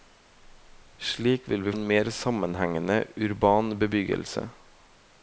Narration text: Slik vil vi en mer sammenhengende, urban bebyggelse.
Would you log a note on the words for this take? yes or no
no